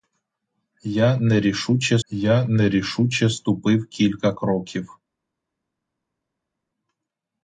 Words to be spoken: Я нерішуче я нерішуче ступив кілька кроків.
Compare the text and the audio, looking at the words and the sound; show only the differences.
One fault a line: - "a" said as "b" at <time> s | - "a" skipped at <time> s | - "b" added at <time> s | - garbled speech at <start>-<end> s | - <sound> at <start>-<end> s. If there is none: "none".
none